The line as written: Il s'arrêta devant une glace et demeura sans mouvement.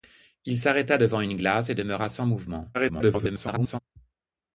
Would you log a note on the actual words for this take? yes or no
yes